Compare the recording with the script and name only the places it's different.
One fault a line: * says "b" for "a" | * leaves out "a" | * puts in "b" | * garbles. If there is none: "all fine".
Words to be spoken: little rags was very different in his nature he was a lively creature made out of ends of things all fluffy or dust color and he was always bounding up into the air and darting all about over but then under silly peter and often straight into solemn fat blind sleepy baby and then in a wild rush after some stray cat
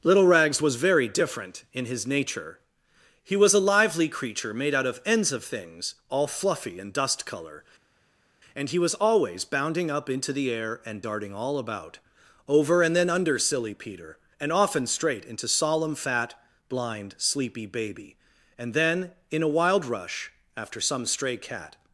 * says "and" for "or"
* says "and" for "but"